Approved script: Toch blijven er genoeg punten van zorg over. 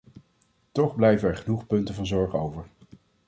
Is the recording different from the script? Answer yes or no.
no